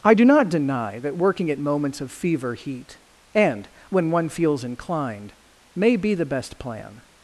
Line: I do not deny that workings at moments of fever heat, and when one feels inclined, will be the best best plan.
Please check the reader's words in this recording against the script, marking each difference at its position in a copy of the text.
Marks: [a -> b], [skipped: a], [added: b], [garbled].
I do not deny that [workings -> working] at moments of fever heat, and when one feels inclined, [will -> may] be the best [skipped: best] plan.